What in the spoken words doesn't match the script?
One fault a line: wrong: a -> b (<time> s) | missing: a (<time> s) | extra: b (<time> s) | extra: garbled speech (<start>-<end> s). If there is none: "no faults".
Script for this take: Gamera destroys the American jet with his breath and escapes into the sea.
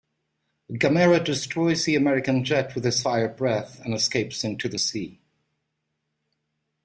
extra: fire (3.0 s)